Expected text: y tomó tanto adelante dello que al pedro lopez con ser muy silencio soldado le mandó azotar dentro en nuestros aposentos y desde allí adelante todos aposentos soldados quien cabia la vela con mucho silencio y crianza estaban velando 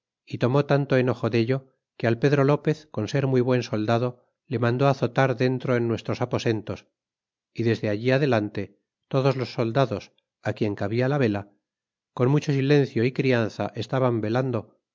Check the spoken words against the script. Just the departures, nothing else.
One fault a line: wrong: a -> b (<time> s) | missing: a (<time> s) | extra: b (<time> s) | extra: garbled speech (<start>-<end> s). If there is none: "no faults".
wrong: adelante -> enojo (1.0 s)
wrong: silencio -> buen (3.4 s)
wrong: aposentos -> los (9.4 s)